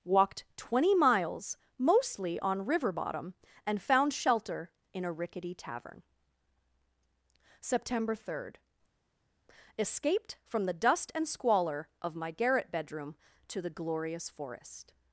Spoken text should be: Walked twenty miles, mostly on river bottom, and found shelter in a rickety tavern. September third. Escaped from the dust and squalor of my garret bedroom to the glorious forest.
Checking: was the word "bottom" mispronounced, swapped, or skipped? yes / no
no